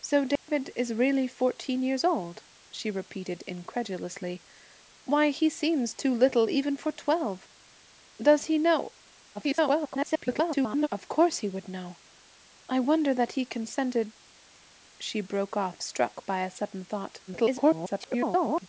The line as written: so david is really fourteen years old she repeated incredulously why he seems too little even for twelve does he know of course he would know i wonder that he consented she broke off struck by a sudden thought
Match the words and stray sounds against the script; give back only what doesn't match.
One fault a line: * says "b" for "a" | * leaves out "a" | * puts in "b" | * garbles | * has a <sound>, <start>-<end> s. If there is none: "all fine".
* has a dropout, 0.4-0.5 s
* garbles
* garbles